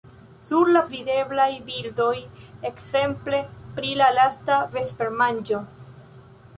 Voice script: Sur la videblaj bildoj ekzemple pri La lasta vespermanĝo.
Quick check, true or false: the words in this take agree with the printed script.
true